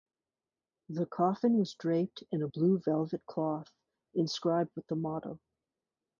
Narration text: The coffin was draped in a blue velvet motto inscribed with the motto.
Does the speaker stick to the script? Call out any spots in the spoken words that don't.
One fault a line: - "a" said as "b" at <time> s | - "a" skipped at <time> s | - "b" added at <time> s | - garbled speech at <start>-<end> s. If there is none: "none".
- "motto" said as "cloth" at 3.3 s